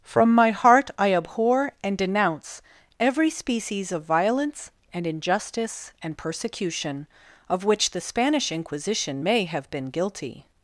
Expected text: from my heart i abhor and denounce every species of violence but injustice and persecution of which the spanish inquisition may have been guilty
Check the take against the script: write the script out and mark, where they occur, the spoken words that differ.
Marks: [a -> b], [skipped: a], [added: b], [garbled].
from my heart i abhor and denounce every species of violence [but -> and] injustice and persecution of which the spanish inquisition may have been guilty